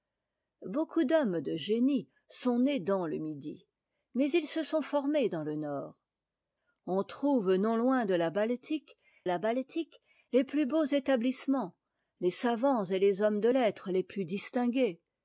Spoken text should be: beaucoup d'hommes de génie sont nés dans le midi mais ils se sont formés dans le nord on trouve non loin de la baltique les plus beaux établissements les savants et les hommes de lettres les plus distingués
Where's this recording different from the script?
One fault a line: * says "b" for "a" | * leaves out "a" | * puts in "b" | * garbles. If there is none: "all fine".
* puts in "la baltique"